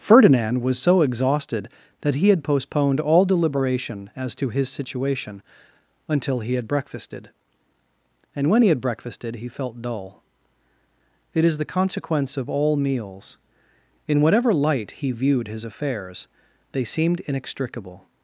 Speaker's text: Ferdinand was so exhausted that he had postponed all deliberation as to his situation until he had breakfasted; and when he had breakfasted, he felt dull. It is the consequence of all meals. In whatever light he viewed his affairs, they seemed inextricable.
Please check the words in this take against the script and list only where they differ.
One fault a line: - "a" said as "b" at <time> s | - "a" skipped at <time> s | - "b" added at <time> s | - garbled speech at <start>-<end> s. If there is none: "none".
none